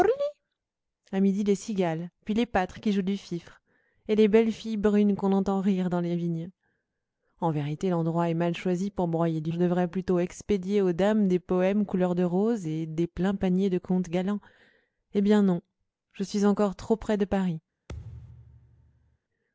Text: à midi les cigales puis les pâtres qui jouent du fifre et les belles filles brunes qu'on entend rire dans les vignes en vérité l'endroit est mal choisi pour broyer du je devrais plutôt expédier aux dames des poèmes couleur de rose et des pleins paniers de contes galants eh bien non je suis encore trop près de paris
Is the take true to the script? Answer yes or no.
yes